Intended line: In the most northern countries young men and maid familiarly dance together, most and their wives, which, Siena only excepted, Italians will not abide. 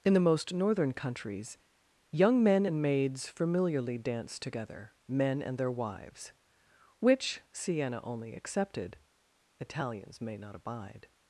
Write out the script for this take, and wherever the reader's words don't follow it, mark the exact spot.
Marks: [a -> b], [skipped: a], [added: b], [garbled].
In the most northern countries young men and [maid -> maids] familiarly dance together, [most -> men] and their wives, which, Siena only excepted, Italians [will -> may] not abide.